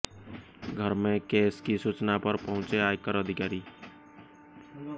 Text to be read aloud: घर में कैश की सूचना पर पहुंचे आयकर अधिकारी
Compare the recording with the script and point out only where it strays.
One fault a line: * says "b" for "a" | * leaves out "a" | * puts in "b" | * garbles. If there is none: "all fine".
all fine